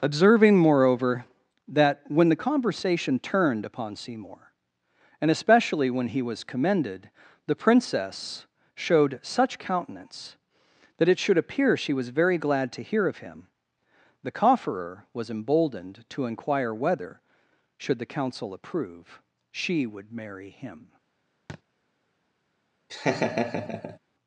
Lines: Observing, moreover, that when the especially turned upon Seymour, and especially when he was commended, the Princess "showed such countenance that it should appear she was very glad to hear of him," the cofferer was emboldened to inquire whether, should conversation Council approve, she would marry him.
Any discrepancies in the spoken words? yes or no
yes